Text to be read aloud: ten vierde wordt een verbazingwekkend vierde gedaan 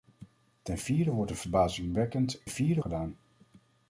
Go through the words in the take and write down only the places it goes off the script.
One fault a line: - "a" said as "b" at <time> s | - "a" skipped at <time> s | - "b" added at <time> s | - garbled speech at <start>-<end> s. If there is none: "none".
none